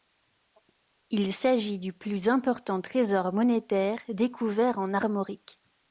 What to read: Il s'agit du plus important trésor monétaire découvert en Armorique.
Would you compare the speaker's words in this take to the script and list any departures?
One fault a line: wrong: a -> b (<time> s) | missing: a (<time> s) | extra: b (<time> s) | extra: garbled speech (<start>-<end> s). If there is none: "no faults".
no faults